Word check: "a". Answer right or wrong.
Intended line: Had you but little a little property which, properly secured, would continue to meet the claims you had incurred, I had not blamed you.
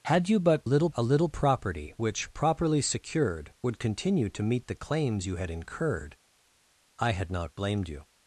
right